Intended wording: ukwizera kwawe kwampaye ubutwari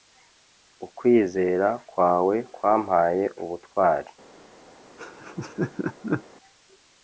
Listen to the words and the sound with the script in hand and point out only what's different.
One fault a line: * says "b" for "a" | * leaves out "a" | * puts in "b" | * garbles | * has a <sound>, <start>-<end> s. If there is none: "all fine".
* has a laugh, 5.0-6.2 s